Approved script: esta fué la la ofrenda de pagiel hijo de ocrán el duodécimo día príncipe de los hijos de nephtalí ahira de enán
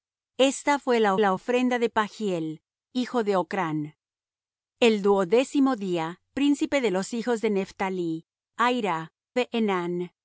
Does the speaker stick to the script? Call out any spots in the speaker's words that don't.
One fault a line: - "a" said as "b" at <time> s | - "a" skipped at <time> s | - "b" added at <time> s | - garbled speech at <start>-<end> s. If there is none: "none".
none